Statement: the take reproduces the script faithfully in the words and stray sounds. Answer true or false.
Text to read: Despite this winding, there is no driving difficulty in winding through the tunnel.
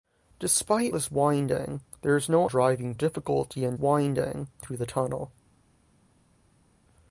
true